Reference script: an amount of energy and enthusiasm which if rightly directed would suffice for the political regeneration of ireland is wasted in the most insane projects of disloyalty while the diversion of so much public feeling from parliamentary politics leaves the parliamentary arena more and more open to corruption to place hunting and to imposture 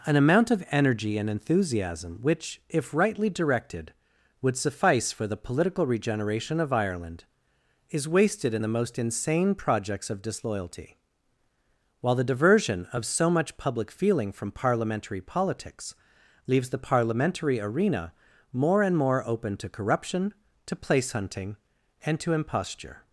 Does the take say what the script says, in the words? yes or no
yes